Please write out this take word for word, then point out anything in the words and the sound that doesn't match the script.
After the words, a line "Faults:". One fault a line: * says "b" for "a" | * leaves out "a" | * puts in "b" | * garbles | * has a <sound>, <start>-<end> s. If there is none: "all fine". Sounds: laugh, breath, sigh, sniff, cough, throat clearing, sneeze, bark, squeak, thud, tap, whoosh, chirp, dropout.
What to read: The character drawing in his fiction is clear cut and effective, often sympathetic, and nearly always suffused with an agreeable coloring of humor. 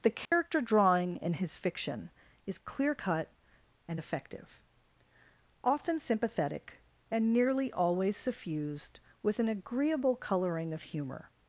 The character drawing in his fiction is clear cut and effective, often sympathetic, and nearly always suffused with an agreeable coloring of humor.
Faults:
* has a dropout, 0.3-0.3 s